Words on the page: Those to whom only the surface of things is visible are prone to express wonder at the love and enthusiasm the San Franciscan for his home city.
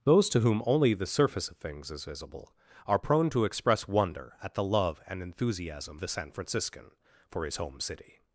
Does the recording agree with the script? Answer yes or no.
yes